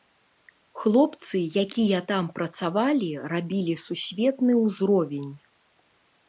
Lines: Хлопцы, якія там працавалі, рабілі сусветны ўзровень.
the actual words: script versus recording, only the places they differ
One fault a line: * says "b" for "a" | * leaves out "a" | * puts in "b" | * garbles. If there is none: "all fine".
all fine